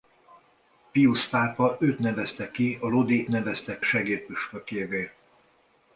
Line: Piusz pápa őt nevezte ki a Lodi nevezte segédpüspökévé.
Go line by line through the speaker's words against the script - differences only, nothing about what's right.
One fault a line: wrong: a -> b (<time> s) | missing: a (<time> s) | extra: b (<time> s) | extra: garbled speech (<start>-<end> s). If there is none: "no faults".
no faults